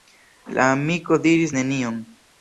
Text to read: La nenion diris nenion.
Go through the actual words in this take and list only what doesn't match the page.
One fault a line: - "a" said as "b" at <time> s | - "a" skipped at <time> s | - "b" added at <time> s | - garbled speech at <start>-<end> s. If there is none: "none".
- "nenion" said as "amiko" at 0.8 s